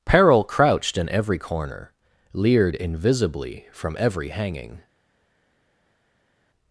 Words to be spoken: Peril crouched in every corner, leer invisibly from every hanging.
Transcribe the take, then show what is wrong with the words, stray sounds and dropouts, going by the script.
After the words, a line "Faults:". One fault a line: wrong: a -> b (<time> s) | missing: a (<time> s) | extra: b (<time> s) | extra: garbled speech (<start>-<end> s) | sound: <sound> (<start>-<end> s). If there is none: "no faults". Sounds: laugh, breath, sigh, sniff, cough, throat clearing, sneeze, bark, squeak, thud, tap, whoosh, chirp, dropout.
Peril crouched in every corner, leered invisibly from every hanging.
Faults:
wrong: leer -> leered (2.3 s)